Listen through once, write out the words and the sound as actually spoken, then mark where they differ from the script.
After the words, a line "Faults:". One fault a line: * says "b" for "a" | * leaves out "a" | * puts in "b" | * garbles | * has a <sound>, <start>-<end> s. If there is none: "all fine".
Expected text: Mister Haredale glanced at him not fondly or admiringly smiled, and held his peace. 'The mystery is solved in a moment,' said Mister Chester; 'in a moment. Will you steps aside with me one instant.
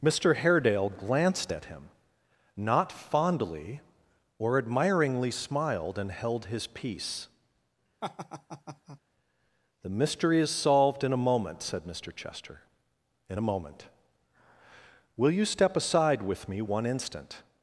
Mister Haredale glanced at him not fondly or admiringly smiled, and held his peace. 'The mystery is solved in a moment,' said Mister Chester; 'in a moment. Will you step aside with me one instant.
Faults:
* has a laugh, 8.0-9.0 s
* says "step" for "steps"